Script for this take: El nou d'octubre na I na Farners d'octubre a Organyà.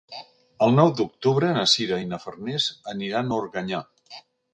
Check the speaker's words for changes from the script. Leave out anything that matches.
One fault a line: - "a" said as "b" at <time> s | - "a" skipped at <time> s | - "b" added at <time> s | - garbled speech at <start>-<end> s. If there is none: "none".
- "Sira" added at 1.7 s
- "d'octubre" said as "aniran" at 2.9 s